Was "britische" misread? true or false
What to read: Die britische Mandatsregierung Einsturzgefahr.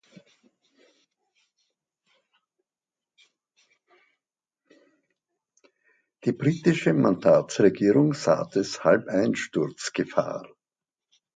false